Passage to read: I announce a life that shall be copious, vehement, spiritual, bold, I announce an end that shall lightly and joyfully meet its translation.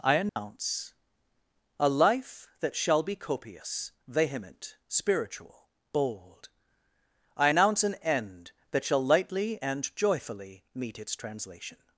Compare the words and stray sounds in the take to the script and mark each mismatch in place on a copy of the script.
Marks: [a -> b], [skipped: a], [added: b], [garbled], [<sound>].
I announce [dropout] a life that shall be copious, vehement, spiritual, bold, I announce an end that shall lightly and joyfully meet its translation.